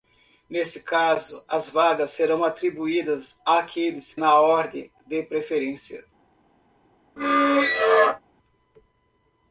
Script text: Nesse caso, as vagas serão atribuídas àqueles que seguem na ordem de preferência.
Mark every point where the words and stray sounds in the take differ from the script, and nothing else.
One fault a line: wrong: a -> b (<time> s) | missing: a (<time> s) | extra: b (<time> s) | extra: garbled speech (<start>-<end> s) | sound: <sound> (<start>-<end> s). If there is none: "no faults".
missing: que seguem (4.2 s)
sound: squeak (7.2-8.2 s)